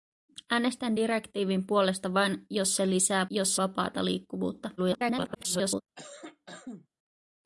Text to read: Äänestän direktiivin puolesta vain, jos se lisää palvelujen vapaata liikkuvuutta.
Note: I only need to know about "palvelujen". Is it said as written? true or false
false